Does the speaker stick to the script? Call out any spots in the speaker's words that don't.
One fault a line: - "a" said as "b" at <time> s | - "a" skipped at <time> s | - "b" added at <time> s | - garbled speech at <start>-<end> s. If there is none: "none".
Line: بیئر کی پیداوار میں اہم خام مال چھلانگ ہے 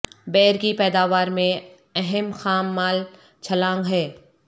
none